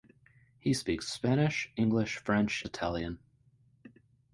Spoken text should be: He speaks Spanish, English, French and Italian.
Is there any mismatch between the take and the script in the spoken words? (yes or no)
yes